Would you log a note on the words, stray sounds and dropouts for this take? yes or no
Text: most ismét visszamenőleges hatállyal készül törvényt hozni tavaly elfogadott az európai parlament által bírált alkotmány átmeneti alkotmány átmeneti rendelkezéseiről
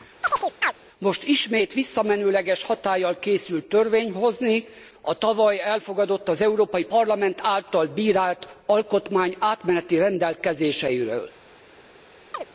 yes